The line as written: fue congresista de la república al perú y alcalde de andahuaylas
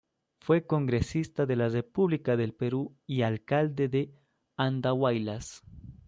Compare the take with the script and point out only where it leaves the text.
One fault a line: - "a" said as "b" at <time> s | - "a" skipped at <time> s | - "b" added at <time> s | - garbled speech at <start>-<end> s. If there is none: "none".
- "al" said as "del" at 2.4 s